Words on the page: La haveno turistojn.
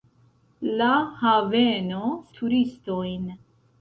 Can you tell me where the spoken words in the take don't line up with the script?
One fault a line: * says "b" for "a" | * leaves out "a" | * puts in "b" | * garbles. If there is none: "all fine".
all fine